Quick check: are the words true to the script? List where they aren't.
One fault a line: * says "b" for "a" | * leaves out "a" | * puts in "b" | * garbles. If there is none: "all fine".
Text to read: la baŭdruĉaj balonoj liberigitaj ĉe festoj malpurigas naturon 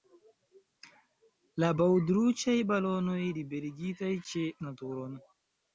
* leaves out "festoj malpurigas"